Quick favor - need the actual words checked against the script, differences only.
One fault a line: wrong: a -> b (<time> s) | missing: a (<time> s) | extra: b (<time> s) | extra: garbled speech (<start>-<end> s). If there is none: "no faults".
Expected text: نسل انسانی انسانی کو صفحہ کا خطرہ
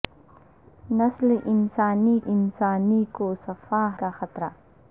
no faults